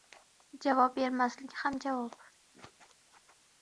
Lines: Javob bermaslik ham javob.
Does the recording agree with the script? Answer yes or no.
yes